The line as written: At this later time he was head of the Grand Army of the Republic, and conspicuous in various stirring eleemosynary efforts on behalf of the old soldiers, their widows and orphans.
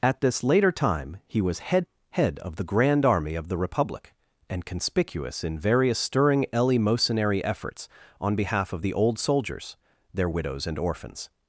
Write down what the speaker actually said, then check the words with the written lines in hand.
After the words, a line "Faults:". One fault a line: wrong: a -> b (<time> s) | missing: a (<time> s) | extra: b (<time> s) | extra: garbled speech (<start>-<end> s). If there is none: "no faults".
At this later time he was head head of the Grand Army of the Republic, and conspicuous in various stirring eleemosynary efforts on behalf of the old soldiers, their widows and orphans.
Faults:
extra: head (2.1 s)